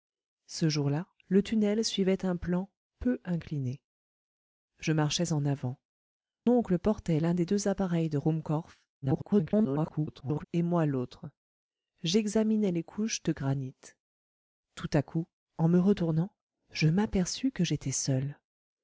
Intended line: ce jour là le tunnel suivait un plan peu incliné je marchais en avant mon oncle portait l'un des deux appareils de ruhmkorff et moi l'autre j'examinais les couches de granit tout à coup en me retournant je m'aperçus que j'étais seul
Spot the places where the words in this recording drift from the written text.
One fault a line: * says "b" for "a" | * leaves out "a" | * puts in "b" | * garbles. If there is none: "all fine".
* leaves out "mon"
* garbles